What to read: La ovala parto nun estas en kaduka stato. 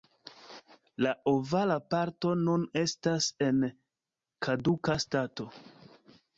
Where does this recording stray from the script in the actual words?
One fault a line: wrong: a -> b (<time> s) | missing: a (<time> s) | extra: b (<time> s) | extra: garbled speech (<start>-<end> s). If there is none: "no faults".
no faults